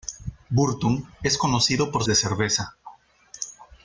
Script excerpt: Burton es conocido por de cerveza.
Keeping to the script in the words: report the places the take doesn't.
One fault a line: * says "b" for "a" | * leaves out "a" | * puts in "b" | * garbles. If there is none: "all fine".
all fine